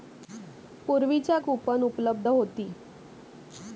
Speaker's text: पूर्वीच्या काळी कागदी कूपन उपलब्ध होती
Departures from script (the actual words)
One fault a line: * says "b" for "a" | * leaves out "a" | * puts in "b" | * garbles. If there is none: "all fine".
* leaves out "काळी कागदी"